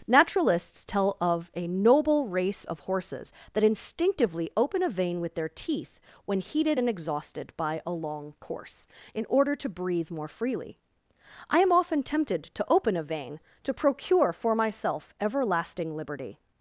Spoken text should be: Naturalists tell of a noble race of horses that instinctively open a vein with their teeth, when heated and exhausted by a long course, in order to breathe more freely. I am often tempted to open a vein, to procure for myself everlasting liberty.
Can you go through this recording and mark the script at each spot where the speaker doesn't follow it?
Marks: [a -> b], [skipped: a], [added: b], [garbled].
Naturalists tell of a noble race of horses that instinctively open a vein with their teeth, when heated and exhausted by a long course, in order to breathe more freely. I am often tempted to open a vein, to procure for myself everlasting liberty.